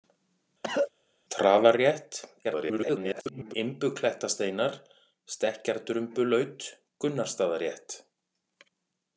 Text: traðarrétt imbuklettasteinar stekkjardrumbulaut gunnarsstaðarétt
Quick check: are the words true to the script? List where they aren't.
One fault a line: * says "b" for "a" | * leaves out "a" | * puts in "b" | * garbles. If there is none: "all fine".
* garbles